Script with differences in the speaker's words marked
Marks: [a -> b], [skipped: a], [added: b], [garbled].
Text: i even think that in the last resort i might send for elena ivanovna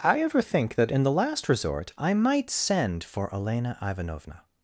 i [even -> ever] think that in the last resort i might send for elena ivanovna